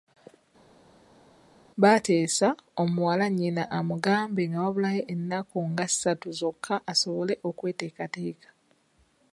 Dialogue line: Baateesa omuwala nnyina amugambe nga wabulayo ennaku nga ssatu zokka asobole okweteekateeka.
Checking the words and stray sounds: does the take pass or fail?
pass